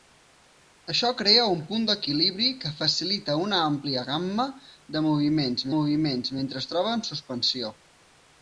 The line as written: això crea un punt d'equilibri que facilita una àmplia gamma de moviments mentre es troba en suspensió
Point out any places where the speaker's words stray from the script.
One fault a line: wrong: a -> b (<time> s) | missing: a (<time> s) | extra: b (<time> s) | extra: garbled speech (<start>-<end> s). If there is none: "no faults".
extra: moviments (5.8 s)